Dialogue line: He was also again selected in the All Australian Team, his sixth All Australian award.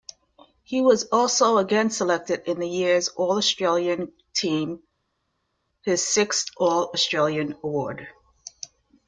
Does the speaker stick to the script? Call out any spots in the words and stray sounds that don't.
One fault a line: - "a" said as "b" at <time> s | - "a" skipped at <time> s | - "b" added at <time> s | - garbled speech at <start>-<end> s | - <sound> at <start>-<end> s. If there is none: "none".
- "year's" added at 2.7 s